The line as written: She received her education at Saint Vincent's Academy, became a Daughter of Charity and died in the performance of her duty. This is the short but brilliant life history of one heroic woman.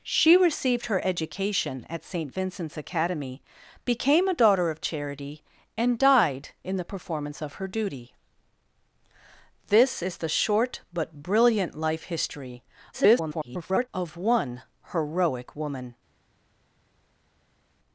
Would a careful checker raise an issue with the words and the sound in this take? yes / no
yes